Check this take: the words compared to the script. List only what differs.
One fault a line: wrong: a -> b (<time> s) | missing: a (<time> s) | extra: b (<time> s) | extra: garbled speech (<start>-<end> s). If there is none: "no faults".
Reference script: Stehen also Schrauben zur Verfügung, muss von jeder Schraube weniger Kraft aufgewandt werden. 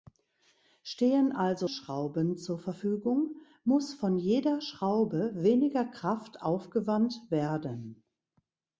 no faults